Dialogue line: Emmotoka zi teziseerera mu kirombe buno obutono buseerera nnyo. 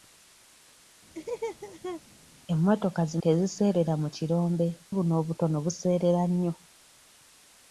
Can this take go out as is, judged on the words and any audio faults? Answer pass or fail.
fail